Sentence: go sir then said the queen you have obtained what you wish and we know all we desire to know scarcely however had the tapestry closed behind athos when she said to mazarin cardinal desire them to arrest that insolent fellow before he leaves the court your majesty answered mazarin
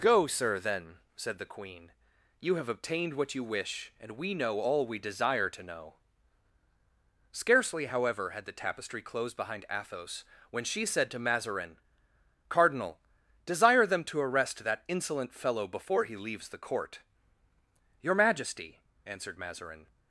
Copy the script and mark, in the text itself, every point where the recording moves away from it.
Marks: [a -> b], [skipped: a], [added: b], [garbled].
go sir then said the queen you have obtained what you wish and we know all we desire to know scarcely however had the tapestry closed behind athos when she said to mazarin cardinal desire them to arrest that insolent fellow before he leaves the court your majesty answered mazarin